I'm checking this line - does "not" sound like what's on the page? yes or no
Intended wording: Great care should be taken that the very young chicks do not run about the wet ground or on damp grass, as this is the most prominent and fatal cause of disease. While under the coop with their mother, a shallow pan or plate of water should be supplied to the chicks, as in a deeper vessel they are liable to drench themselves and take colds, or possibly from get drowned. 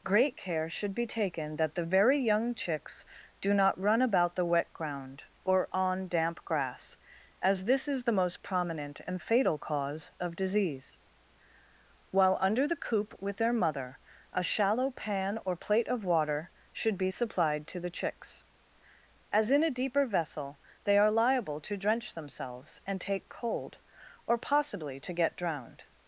yes